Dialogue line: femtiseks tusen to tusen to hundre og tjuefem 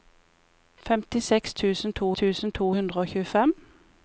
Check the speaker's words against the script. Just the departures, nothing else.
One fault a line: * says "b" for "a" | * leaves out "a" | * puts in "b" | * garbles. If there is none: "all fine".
all fine